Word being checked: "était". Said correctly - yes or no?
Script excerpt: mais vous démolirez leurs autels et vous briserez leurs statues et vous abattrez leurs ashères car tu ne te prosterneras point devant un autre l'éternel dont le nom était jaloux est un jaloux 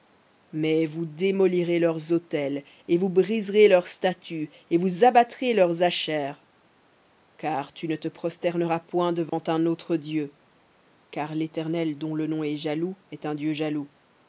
no